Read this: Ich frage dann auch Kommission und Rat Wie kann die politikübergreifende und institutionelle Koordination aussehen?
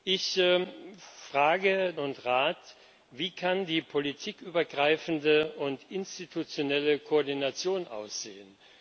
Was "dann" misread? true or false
true